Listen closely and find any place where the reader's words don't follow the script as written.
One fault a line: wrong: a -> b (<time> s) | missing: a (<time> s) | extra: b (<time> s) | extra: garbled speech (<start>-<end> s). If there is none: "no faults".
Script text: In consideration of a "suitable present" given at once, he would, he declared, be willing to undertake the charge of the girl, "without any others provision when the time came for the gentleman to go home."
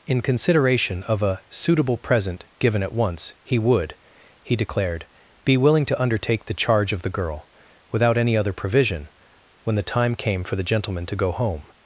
wrong: others -> other (8.3 s)